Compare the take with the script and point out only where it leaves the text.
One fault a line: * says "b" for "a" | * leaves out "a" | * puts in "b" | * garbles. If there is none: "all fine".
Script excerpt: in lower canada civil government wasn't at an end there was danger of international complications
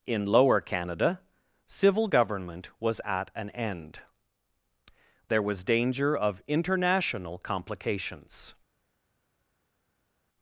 * says "was" for "wasn't"